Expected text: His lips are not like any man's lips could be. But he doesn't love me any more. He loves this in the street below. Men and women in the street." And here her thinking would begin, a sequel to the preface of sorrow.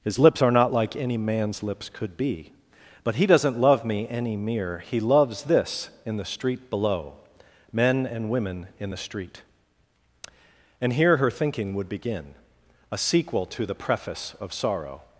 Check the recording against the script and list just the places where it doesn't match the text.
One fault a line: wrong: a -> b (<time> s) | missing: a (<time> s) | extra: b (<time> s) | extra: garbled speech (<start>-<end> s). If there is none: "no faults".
wrong: more -> mere (4.4 s)